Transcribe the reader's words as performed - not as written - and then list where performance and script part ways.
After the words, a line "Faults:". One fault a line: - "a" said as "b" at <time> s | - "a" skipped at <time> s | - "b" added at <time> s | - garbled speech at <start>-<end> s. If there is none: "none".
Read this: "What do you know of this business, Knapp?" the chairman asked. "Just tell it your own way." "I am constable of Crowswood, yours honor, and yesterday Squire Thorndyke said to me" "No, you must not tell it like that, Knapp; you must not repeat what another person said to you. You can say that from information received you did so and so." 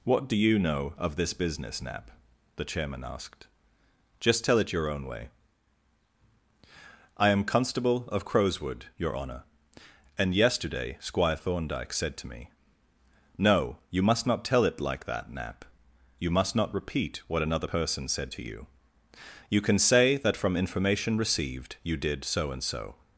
"What do you know of this business, Knapp?" the chairman asked. "Just tell it your own way." "I am constable of Crowswood, your honor, and yesterday Squire Thorndyke said to me" "No, you must not tell it like that, Knapp; you must not repeat what another person said to you. You can say that from information received you did so and so."
Faults:
- "yours" said as "your" at 9.0 s